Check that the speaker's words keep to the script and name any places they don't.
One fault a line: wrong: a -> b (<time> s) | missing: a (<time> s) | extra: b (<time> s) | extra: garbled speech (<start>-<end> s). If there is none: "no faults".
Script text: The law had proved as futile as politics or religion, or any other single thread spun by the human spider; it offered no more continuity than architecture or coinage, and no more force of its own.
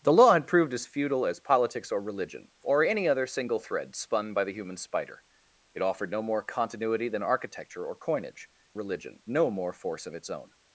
wrong: and -> religion (8.7 s)